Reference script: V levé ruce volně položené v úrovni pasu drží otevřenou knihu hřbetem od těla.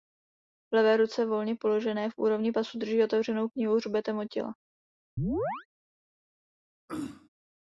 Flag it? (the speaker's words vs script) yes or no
no